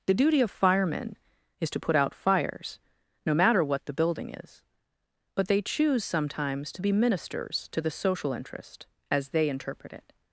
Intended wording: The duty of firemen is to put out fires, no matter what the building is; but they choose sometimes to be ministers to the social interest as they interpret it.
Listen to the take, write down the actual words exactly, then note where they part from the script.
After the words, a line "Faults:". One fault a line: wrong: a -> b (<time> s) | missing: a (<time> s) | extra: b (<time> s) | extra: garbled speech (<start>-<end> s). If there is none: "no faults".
The duty of firemen is to put out fires, no matter what the building is; but they choose sometimes to be ministers to the social interest as they interpret it.
Faults:
no faults